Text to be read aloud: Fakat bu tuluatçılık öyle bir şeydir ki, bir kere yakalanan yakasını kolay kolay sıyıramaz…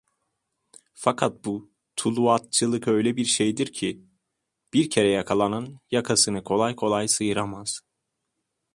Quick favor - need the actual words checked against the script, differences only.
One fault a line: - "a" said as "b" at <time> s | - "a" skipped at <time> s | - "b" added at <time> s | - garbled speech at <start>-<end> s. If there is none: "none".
none